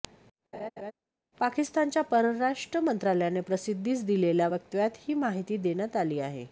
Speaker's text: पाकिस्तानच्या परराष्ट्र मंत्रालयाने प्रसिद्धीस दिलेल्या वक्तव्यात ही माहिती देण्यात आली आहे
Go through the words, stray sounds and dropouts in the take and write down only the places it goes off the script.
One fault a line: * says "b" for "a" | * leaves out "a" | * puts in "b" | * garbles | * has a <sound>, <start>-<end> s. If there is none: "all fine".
* has a laugh, 0.5-0.9 s